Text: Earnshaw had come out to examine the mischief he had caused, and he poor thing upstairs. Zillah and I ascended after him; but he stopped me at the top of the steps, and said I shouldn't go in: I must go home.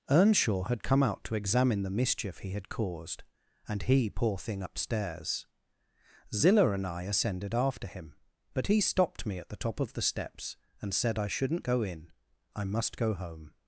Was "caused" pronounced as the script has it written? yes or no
yes